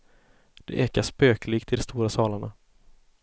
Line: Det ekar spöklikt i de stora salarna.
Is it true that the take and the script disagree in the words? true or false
false